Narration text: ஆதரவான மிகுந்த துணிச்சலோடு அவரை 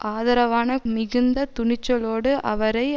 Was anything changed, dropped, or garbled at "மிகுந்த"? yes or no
no